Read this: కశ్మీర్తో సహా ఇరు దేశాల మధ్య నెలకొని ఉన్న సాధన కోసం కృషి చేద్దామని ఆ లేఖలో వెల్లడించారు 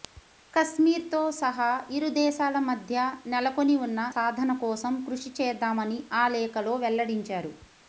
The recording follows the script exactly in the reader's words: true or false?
true